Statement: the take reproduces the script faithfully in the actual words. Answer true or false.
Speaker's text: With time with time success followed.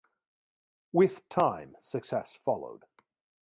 false